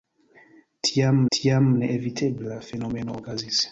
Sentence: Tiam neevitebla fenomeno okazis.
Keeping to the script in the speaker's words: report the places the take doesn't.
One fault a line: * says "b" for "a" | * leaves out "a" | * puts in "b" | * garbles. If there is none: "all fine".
* puts in "tiam"